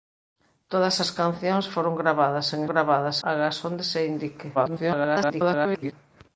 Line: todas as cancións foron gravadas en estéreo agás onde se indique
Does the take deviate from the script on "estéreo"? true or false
true